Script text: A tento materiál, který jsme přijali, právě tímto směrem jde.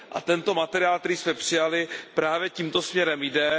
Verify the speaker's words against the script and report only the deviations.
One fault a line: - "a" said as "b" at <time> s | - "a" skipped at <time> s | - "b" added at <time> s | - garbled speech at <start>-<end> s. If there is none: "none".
none